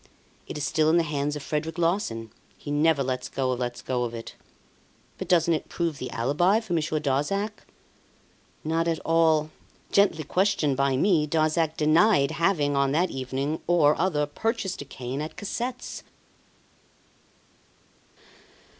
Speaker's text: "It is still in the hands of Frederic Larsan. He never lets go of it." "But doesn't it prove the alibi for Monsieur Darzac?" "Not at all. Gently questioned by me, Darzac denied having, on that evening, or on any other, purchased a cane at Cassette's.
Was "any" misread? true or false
true